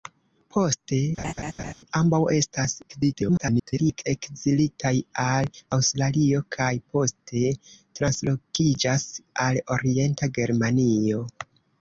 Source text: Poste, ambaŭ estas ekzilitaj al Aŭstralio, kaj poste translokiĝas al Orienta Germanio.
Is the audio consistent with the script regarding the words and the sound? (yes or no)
no